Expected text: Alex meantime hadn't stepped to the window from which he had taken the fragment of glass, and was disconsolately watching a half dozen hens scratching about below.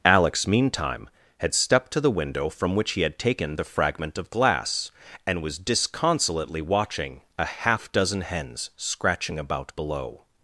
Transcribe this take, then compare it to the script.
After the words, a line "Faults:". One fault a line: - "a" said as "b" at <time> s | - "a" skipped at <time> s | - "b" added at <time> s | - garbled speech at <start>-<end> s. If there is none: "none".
Alex meantime had stepped to the window from which he had taken the fragment of glass, and was disconsolately watching a half dozen hens scratching about below.
Faults:
- "hadn't" said as "had" at 1.4 s